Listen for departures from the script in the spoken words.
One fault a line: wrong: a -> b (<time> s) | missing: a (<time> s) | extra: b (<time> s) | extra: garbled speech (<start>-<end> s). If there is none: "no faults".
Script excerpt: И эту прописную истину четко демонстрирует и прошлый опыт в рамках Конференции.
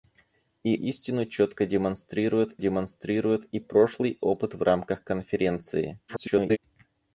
missing: эту прописную (0.8 s)
extra: демонстрирует (2.6 s)
extra: garbled speech (6.1-6.6 s)